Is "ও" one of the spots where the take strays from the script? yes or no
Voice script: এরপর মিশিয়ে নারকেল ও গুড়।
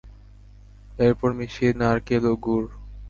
no